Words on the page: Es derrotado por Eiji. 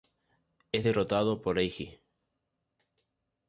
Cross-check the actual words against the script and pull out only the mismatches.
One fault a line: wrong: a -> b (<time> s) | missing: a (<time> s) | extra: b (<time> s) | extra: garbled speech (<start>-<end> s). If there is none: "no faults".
no faults